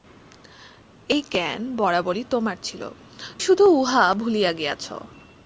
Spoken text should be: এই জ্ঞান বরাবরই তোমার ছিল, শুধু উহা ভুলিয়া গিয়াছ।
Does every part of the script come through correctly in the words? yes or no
yes